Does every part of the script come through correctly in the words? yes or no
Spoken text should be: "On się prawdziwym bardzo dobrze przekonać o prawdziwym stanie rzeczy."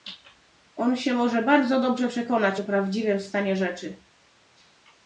no